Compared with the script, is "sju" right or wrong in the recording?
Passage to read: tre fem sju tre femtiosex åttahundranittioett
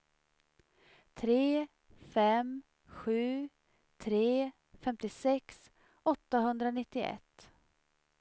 right